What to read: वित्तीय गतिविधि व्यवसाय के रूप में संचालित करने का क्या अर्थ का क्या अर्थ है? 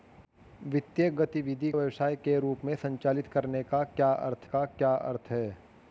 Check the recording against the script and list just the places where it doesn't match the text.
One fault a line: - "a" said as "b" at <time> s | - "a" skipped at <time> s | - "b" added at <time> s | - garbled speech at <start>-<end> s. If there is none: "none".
none